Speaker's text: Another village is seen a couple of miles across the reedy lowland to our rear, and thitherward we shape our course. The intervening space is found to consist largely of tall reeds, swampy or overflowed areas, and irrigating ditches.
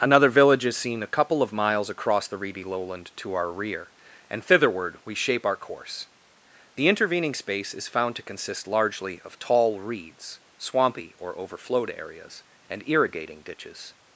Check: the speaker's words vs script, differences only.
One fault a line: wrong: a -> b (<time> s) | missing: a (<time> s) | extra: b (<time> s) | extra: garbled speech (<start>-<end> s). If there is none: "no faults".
no faults